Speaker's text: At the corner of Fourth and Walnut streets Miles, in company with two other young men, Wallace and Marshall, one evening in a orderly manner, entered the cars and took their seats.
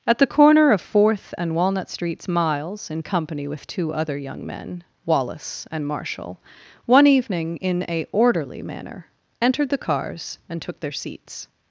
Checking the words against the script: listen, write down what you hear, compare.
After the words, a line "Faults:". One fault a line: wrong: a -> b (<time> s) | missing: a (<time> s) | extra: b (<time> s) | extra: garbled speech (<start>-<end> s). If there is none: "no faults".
At the corner of Fourth and Walnut streets Miles, in company with two other young men, Wallace and Marshall, one evening in a orderly manner, entered the cars and took their seats.
Faults:
no faults